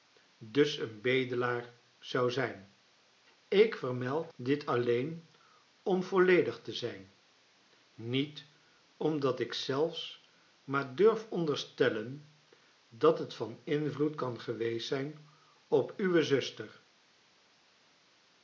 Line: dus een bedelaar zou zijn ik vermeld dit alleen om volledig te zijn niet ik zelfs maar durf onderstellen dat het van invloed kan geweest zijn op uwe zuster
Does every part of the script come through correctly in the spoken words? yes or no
no